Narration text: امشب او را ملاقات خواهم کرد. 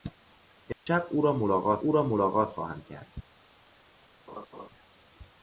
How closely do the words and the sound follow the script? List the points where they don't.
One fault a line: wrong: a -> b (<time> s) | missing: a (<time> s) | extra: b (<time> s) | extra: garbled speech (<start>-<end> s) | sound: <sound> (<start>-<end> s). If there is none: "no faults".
sound: dropout (0.7-0.9 s)
extra: او را ملاقات (1.8 s)
sound: laugh (4.3-4.7 s)